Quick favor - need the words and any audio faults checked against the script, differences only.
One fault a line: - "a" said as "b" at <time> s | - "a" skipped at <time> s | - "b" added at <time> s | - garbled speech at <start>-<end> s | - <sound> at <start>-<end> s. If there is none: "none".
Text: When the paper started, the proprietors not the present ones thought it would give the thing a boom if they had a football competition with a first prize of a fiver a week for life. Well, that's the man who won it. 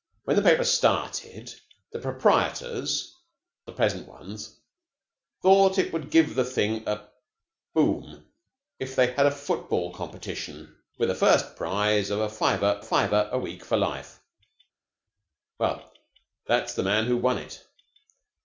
- "not" skipped at 3.1 s
- "fiver" added at 12.8 s